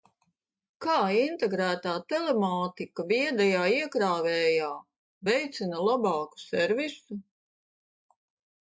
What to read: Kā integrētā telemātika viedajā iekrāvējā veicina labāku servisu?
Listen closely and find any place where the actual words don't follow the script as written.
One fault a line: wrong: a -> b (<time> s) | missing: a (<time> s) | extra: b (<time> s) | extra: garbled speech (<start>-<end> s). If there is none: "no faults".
no faults